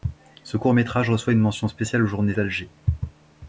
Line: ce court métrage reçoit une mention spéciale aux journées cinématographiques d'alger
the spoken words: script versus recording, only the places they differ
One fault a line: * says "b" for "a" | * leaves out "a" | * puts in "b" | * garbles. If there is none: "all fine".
* leaves out "cinématographiques"